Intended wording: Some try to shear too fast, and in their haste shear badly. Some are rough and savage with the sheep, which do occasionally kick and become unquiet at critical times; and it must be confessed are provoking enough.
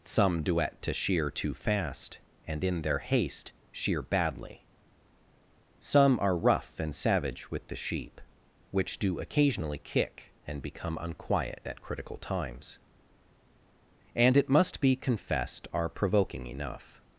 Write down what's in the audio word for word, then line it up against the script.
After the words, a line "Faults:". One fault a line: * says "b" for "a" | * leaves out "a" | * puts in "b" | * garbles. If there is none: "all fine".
Some duet to shear too fast, and in their haste shear badly. Some are rough and savage with the sheep, which do occasionally kick and become unquiet at critical times; and it must be confessed are provoking enough.
Faults:
* says "duet" for "try"